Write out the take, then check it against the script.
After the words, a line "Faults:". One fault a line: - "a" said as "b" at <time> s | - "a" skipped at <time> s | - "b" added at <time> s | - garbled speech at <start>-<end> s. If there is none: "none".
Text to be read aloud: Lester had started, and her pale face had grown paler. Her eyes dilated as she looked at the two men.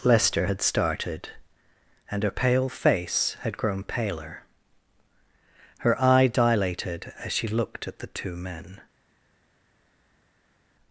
Lester had started, and her pale face had grown paler. Her eye dilated as she looked at the two men.
Faults:
- "eyes" said as "eye" at 6.0 s